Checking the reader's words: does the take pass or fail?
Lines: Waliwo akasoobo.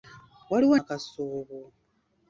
pass